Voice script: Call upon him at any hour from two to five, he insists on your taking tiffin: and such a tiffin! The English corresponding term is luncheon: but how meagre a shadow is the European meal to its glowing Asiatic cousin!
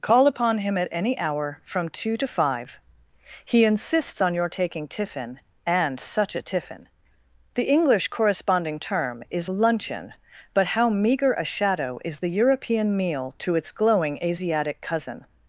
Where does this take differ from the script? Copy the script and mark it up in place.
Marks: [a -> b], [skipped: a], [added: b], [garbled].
Call upon him at any hour from two to five, he insists on your taking tiffin: and such a tiffin! The English corresponding term is luncheon: but how meagre a shadow is the European meal to its glowing Asiatic cousin!